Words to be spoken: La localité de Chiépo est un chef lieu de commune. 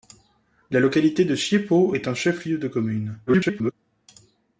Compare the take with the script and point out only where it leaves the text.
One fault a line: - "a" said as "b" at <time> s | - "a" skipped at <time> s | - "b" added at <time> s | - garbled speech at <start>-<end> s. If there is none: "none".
- garbled speech at 3.3-3.7 s